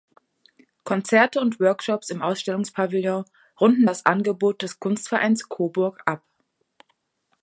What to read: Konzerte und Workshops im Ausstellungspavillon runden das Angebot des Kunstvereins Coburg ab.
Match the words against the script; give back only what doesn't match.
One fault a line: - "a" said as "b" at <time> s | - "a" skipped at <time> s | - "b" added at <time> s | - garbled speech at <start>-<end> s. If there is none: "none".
none